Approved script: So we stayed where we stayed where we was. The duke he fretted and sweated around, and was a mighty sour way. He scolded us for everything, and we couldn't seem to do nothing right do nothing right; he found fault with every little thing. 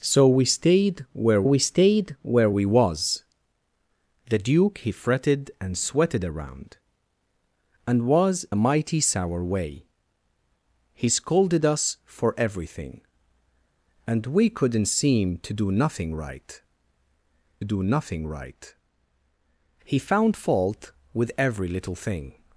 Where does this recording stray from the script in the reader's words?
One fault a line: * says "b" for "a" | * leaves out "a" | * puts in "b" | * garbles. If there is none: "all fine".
all fine